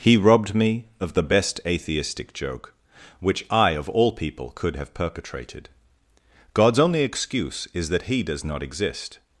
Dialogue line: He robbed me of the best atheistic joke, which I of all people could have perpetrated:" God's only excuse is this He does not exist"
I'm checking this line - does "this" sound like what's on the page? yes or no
no